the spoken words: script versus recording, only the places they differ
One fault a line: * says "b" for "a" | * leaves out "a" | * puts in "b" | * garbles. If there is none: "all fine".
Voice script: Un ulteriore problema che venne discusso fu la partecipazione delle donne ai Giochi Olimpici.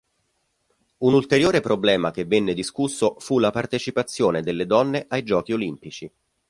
all fine